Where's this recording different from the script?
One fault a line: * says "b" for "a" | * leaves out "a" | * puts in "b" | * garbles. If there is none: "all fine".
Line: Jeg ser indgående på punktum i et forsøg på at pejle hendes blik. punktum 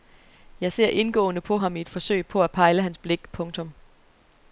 * says "ham" for "punktum"
* says "hans" for "hendes"